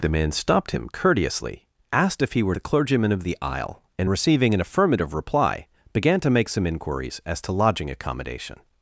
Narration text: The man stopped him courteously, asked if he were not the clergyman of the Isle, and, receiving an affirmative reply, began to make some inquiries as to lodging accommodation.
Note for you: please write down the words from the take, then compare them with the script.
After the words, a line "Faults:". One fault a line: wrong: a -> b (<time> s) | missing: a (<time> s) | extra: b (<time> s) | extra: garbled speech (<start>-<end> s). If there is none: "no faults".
The man stopped him courteously, asked if he were the clergyman of the Isle, and, receiving an affirmative reply, began to make some inquiries as to lodging accommodation.
Faults:
missing: not (2.5 s)